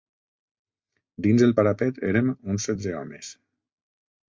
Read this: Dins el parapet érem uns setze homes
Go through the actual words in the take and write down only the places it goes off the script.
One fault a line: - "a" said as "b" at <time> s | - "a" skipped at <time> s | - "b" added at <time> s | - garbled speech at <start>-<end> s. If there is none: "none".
none